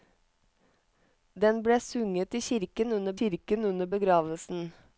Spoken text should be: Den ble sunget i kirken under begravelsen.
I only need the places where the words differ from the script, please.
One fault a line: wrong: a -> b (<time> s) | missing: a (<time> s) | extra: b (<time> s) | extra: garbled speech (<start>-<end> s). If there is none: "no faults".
extra: kirken under (3.2 s)